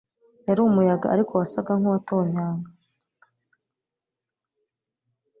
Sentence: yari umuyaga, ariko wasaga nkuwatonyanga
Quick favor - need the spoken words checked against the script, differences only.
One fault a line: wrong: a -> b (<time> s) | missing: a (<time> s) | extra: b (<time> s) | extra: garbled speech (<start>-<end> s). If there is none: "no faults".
no faults